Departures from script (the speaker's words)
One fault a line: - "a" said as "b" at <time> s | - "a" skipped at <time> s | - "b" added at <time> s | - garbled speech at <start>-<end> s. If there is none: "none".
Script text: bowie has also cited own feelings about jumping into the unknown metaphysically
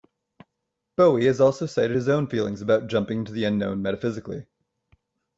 - "his" added at 2.0 s